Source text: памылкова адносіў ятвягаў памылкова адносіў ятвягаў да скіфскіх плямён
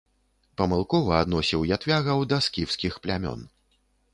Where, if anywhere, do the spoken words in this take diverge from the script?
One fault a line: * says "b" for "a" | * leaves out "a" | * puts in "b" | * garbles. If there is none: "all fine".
* leaves out "памылкова адносіў ятвягаў"